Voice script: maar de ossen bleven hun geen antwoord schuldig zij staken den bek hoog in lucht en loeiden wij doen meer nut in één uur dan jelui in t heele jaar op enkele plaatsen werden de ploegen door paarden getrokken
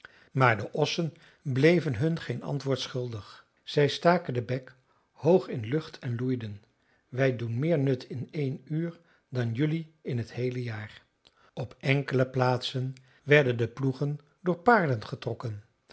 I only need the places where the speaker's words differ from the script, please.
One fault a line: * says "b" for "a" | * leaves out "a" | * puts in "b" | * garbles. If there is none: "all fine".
all fine